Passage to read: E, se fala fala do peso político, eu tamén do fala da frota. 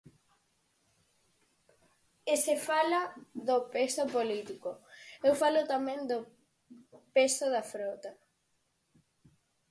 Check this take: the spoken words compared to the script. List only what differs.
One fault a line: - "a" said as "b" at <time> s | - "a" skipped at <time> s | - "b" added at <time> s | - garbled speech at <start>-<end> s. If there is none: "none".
- "fala" skipped at 3.0 s
- "falo" added at 5.4 s
- "fala" said as "peso" at 7.2 s